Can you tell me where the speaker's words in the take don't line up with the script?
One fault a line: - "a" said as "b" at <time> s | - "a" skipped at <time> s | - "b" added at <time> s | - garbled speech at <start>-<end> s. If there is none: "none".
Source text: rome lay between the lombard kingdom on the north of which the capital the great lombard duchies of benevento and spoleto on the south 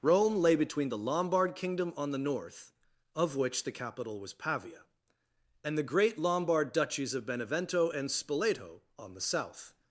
- "was pavia and" added at 4.2 s